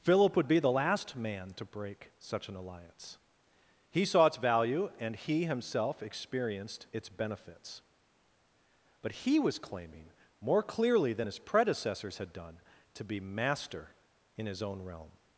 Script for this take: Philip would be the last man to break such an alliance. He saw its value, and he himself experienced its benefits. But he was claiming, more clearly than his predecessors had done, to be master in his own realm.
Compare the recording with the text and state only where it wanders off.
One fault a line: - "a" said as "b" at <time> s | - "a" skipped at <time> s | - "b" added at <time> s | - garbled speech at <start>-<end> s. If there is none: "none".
none